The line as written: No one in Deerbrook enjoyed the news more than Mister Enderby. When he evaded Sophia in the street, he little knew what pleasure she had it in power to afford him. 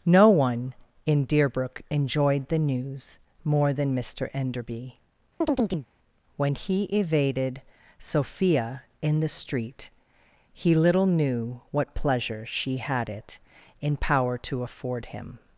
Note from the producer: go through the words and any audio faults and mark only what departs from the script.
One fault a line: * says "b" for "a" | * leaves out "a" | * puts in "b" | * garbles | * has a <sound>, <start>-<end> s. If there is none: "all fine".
* has a chirp, 5.4-5.9 s